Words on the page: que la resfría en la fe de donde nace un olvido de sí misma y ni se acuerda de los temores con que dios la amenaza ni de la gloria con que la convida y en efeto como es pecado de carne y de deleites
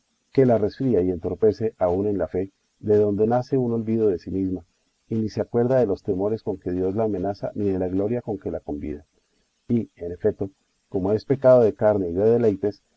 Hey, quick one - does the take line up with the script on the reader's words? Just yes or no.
no